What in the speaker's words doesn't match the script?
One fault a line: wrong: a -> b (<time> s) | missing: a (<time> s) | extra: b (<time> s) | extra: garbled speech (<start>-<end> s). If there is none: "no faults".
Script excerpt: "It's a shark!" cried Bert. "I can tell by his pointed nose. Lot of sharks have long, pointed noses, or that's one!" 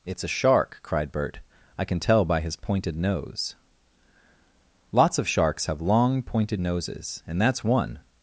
wrong: Lot -> Lots (4.9 s)
wrong: or -> and (7.3 s)